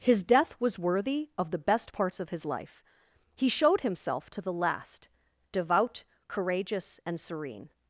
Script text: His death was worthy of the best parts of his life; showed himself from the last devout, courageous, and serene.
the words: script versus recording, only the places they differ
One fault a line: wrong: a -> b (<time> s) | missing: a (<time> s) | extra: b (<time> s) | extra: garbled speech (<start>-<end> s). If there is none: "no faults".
extra: he (3.4 s)
wrong: from -> to (4.3 s)